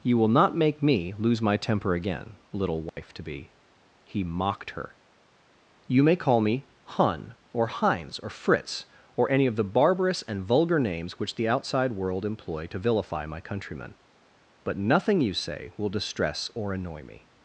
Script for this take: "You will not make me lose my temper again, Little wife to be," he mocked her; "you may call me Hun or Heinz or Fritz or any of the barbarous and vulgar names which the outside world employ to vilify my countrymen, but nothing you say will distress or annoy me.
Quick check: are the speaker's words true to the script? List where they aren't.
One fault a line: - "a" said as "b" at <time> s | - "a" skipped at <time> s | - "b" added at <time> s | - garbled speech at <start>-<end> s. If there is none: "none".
none